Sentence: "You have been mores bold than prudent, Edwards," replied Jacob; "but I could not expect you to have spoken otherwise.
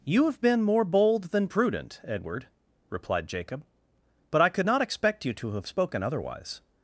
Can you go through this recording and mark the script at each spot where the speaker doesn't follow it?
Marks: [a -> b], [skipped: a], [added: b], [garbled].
"You have been [mores -> more] bold than prudent, [Edwards," -> Edward] replied Jacob; "but I could not expect you to have spoken otherwise.